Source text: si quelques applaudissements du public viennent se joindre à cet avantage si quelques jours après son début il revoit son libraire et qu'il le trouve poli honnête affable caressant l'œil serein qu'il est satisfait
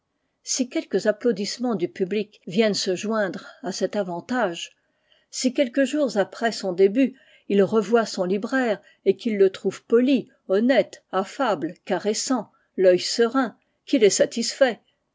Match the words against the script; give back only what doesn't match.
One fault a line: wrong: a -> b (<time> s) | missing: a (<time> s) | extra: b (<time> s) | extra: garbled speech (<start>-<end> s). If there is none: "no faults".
no faults